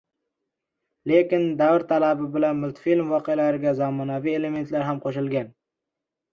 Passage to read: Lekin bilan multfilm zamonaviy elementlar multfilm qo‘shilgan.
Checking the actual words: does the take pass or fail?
fail